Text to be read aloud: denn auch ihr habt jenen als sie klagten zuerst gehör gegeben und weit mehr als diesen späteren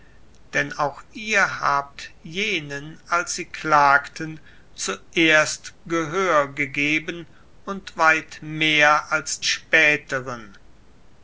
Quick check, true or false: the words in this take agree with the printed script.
false